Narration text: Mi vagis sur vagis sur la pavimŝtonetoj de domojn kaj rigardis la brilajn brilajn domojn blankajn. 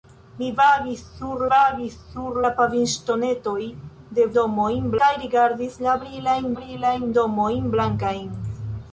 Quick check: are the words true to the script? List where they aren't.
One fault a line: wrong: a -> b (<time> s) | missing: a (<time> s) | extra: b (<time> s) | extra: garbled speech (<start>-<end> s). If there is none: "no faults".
no faults